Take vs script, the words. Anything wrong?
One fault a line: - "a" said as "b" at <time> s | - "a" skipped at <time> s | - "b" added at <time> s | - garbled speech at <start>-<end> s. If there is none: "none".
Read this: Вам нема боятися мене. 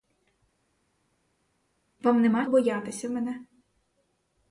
none